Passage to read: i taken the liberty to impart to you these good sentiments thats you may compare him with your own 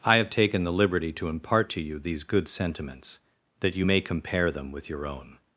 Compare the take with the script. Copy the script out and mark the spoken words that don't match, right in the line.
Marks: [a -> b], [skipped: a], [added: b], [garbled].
i [added: have] taken the liberty to impart to you these good sentiments [thats -> that] you may compare [him -> them] with your own